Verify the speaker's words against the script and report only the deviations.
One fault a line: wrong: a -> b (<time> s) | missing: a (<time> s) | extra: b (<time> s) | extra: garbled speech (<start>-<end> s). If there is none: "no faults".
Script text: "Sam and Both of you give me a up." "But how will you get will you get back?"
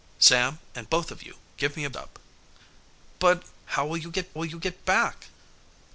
no faults